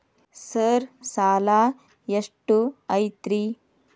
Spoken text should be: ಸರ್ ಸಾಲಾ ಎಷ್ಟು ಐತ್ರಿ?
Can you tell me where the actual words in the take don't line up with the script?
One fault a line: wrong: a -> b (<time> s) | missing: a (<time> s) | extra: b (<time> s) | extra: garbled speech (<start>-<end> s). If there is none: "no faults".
no faults